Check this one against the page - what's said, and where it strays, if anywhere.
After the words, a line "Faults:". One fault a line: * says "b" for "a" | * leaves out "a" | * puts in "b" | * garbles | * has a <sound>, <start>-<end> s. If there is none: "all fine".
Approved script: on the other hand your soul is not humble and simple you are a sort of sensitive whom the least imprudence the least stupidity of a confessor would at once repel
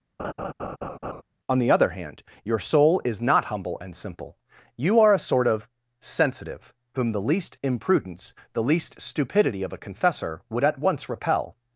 on the other hand your soul is not humble and simple you are a sort of sensitive whom the least imprudence the least stupidity of a confessor would at once repel
Faults:
* has a laugh, 0.2-1.2 s